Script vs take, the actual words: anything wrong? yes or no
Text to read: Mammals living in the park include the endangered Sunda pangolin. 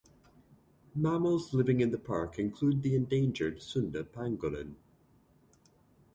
no